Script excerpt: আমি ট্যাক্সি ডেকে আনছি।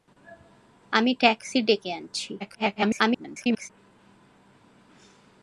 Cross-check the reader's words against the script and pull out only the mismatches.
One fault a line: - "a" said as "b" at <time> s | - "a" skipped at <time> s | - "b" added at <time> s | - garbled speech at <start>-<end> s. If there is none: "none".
- garbled speech at 2.4-3.7 s